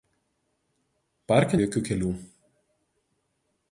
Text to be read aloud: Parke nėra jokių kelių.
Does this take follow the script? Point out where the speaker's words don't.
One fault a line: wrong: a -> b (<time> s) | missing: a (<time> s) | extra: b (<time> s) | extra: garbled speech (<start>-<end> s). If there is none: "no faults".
missing: nėra (1.6 s)